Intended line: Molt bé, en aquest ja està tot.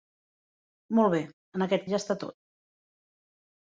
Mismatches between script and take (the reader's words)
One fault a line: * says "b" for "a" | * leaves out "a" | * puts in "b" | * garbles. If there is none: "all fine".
all fine